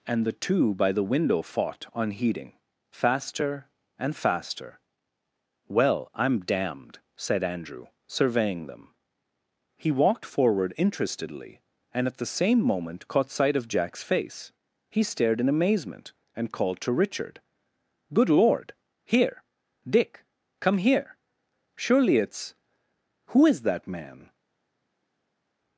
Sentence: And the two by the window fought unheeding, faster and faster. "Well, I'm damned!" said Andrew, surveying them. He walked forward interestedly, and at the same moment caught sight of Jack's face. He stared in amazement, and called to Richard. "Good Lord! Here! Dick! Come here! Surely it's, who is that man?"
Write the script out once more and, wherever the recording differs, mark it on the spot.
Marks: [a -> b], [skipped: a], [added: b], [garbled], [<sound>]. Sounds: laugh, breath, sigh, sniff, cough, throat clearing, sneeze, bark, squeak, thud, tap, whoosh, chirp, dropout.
And the two by the window fought unheeding, faster and faster. "Well, I'm damned!" said Andrew, surveying them. He walked forward interestedly, and at the same moment caught sight of Jack's face. He stared in amazement, and called to Richard. "Good Lord! Here! Dick! Come here! Surely it's, who is that man?"